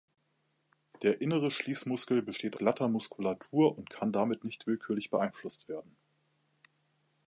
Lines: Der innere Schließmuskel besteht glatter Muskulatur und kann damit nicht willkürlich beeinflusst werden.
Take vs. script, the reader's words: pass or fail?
pass